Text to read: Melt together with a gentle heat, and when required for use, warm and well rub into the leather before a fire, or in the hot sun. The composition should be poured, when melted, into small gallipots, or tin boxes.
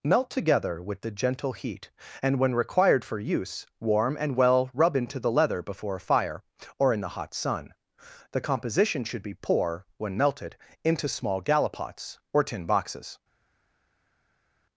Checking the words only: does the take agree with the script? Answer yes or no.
no